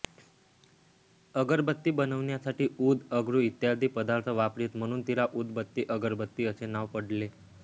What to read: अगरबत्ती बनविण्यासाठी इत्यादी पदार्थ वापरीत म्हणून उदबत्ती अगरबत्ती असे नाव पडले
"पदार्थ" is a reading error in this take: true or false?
false